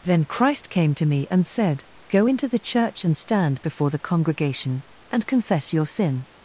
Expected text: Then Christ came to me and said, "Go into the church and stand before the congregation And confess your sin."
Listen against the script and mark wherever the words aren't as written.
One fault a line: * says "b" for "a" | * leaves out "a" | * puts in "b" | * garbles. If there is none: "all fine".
all fine